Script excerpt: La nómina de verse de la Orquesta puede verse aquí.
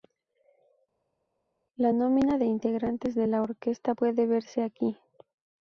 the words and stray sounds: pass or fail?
fail